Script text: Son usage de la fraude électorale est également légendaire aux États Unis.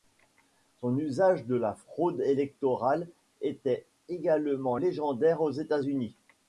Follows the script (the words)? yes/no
no